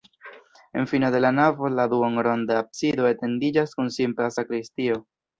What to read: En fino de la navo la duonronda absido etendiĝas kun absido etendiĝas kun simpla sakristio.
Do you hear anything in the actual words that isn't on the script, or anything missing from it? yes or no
yes